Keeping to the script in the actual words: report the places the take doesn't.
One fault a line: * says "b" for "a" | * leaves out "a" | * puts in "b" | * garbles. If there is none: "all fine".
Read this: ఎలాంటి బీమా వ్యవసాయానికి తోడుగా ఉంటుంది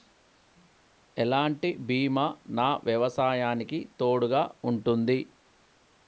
* puts in "నా"